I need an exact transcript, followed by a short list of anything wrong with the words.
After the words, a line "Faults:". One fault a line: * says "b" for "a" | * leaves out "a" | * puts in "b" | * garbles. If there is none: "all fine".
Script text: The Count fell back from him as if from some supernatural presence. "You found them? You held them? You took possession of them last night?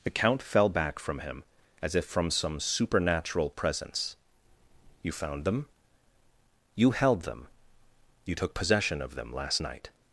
The Count fell back from him as if from some supernatural presence. "You found them? You held them? You took possession of them last night?
Faults:
all fine